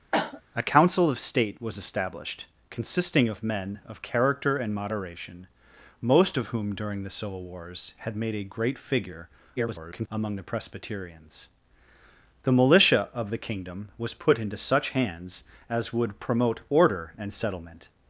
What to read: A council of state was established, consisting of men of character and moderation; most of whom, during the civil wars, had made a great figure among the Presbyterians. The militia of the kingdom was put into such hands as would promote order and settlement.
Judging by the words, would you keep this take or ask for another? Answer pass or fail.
fail